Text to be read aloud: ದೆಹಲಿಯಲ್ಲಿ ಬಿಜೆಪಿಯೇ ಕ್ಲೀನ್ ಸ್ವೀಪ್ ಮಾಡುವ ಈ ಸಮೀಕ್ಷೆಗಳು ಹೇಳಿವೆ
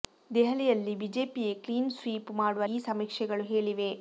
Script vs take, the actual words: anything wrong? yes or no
no